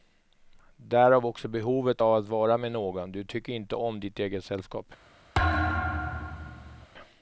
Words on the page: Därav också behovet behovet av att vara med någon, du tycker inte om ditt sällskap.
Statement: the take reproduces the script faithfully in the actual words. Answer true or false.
false